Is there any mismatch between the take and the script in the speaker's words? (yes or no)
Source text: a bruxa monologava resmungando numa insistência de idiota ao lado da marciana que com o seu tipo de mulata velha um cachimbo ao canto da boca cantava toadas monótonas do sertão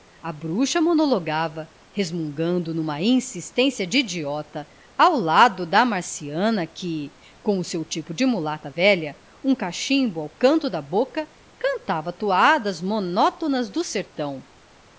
no